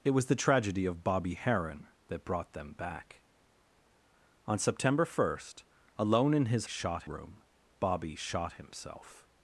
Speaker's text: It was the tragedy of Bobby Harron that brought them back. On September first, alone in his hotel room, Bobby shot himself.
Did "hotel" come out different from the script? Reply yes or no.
yes